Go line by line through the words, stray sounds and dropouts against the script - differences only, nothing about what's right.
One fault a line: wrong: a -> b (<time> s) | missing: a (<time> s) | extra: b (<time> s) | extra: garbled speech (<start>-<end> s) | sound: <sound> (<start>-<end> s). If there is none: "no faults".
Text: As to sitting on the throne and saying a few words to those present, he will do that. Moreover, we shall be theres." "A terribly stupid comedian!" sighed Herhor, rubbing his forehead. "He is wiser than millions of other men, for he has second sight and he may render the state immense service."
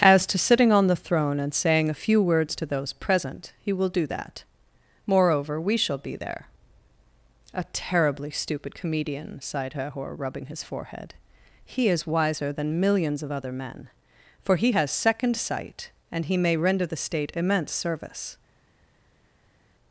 wrong: theres -> there (6.2 s)